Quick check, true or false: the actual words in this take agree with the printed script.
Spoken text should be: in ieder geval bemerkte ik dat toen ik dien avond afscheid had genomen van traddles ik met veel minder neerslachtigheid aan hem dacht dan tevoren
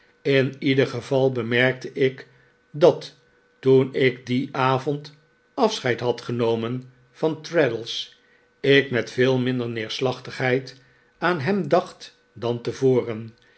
true